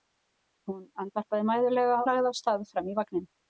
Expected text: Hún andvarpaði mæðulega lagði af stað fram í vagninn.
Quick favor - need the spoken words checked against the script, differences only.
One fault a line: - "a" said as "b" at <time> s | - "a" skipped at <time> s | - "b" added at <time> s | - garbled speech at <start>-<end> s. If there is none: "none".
none